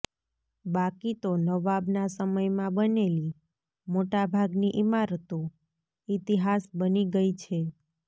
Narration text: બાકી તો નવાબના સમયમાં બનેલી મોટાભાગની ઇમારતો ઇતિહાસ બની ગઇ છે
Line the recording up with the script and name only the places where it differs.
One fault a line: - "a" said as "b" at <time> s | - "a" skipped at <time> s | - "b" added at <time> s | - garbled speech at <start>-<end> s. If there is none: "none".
none